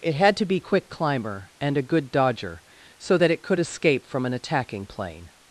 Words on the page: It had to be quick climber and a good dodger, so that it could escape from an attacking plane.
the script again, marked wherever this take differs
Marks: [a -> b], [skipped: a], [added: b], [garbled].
It had to be quick climber and a good dodger, so that it could escape from an attacking plane.